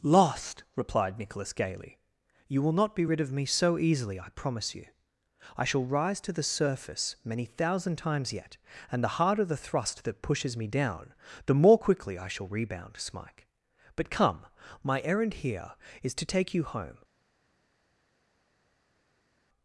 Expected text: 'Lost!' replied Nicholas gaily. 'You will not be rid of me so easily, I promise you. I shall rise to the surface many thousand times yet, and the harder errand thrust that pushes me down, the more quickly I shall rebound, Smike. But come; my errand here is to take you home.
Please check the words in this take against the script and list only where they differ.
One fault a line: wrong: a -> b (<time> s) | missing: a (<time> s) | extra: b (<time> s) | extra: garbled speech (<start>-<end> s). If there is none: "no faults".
wrong: errand -> the (9.4 s)